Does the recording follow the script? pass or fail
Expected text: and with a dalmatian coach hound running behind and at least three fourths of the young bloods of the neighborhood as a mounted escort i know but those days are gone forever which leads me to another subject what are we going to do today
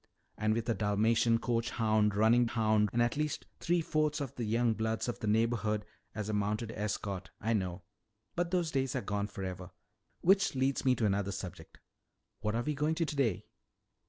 fail